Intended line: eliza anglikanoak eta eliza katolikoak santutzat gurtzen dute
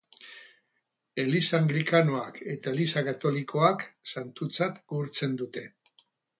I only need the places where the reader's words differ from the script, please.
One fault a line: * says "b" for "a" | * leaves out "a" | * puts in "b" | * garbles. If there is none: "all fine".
all fine